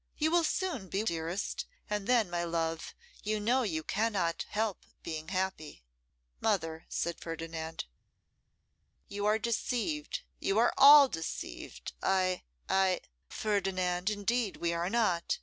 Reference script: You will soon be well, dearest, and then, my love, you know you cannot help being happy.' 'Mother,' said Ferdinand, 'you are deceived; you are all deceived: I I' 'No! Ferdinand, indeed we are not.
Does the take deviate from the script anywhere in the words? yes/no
yes